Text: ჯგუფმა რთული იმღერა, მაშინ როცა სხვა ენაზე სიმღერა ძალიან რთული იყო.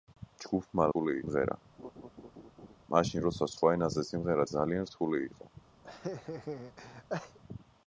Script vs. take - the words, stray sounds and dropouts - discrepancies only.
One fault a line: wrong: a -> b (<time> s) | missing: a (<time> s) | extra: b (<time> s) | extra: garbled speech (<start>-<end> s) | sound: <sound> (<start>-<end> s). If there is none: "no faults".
sound: laugh (1.8-2.8 s)
sound: laugh (5.8-7.4 s)